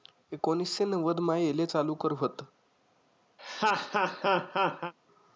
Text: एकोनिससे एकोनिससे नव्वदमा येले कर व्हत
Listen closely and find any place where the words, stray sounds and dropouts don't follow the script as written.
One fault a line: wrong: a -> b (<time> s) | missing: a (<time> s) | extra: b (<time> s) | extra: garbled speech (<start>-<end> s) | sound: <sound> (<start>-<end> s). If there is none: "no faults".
missing: एकोनिससे (0.9 s)
extra: चालू (1.6 s)
sound: laugh (3.4-4.9 s)